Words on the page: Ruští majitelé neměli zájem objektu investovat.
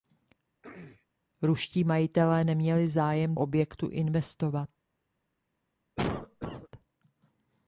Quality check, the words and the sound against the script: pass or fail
fail